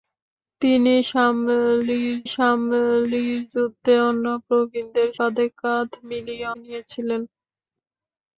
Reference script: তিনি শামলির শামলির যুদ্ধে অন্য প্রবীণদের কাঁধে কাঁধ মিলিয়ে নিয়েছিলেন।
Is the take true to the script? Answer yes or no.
yes